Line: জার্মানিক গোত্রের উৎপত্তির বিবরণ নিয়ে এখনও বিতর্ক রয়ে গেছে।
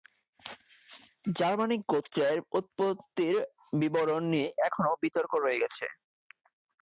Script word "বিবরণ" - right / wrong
right